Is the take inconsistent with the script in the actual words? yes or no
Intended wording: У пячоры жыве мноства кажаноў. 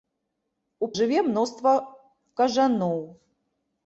yes